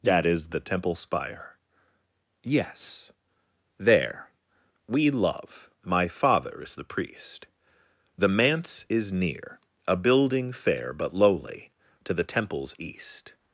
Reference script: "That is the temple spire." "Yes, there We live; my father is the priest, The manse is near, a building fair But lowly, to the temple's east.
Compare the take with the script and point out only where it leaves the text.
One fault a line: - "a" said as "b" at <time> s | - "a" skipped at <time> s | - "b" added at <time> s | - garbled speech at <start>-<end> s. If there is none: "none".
- "live" said as "love" at 5.1 s